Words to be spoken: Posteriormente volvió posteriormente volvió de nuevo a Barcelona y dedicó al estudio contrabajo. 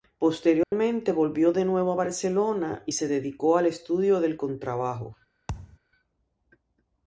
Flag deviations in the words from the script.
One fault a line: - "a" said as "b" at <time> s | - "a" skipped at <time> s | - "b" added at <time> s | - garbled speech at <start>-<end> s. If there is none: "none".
- "posteriormente volvió" skipped at 1.5 s
- "se" added at 2.9 s
- "del" added at 4.2 s